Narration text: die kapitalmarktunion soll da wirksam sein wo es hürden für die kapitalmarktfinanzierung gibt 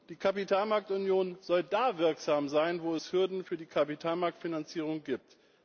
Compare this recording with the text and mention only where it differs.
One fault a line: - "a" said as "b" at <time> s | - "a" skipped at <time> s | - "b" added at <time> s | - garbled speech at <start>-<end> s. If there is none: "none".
none